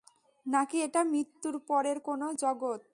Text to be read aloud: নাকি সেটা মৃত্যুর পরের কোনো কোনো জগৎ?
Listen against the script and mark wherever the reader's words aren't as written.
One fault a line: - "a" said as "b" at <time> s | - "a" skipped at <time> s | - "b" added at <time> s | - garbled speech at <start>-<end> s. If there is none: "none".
- "সেটা" said as "এটা" at 0.8 s
- "কোনো" skipped at 2.3 s